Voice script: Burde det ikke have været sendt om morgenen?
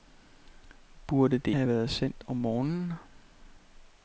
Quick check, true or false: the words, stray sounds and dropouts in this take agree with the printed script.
false